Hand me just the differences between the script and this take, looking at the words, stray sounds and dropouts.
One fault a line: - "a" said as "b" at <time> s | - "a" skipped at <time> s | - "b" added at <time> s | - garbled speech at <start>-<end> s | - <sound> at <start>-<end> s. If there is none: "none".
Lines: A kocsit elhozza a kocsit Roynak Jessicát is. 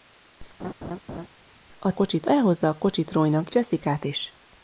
- laugh at 0.6-1.3 s